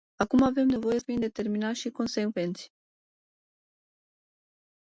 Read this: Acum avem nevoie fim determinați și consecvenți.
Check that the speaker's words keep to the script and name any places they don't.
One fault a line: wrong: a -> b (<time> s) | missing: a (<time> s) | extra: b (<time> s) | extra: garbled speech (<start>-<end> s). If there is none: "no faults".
no faults